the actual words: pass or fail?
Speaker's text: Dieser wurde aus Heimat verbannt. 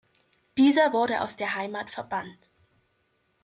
fail